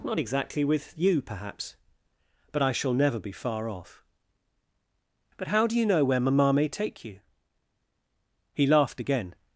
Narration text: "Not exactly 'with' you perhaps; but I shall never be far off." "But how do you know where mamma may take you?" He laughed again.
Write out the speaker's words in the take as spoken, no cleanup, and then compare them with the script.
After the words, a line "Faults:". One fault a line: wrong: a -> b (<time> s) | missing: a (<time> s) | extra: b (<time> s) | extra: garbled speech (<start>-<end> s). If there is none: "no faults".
"Not exactly 'with' you perhaps; but I shall never be far off." "But how do you know where mamma may take you?" He laughed again.
Faults:
no faults